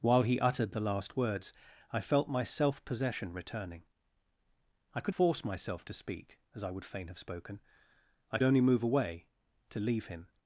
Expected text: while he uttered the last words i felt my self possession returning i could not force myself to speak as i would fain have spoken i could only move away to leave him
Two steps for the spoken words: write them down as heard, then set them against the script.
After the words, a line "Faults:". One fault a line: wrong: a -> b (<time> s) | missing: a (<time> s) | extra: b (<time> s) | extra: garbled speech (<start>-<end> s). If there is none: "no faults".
while he uttered the last words i felt my self possession returning i could force myself to speak as i would fain have spoken i only move away to leave him
Faults:
missing: not (5.2 s)
missing: could (8.4 s)